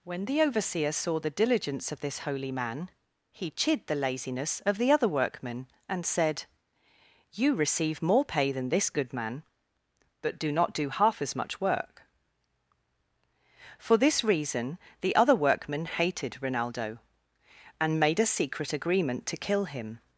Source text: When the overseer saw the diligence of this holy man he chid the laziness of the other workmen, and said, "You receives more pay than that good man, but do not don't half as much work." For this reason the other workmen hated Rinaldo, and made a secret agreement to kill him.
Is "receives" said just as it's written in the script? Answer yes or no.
no